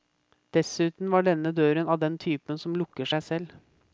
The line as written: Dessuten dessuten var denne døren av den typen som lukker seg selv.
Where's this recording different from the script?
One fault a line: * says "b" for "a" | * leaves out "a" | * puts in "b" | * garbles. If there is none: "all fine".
* leaves out "dessuten"